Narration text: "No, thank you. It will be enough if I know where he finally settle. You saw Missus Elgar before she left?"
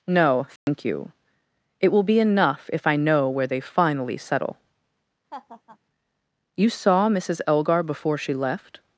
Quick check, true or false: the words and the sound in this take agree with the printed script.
false